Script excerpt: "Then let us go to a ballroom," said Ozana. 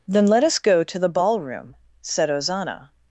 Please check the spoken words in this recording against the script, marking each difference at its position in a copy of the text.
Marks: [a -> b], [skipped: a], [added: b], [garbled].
"Then let us go to [a -> the] ballroom," said Ozana.